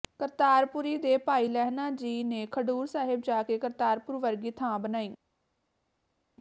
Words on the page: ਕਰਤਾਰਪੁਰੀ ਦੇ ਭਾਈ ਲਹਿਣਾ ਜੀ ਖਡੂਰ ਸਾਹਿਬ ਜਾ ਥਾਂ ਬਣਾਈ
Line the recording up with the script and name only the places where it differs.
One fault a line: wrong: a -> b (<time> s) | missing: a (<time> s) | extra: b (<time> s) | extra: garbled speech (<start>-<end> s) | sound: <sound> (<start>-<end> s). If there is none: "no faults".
extra: ਨੇ (2.2 s)
extra: ਕੇ ਕਰਤਾਰਪੁਰ ਵਰਗੀ (3.4 s)